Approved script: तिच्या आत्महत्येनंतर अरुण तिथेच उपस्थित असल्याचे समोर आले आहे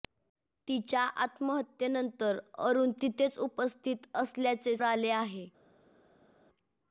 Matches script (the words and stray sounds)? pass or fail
fail